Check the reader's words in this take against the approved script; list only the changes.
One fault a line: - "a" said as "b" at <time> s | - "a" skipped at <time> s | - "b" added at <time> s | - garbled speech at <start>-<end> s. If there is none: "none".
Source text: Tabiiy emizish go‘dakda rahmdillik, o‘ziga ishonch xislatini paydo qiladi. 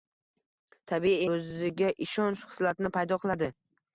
- "emizish go‘dakda rahmdillik" skipped at 1.2 s